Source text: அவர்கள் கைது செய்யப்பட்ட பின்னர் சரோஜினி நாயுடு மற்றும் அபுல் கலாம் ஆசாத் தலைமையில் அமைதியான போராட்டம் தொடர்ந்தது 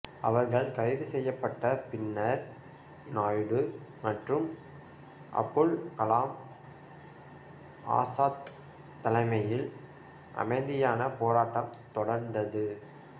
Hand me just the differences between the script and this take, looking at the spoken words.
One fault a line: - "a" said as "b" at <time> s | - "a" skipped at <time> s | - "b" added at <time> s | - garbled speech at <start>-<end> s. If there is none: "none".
- "சரோஜினி" skipped at 2.4 s